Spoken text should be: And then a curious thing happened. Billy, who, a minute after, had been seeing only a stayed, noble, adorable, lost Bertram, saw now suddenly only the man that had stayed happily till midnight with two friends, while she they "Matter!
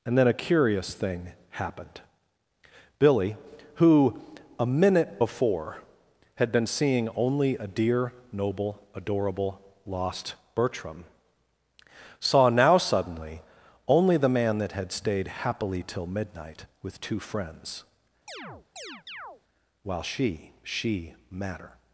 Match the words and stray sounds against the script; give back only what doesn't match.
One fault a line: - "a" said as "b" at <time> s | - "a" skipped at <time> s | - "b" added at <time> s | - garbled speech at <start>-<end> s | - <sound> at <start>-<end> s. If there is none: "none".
- "after" said as "before" at 5.2 s
- "stayed" said as "dear" at 7.7 s
- chirp at 18.3-19.4 s
- "they" said as "she" at 20.6 s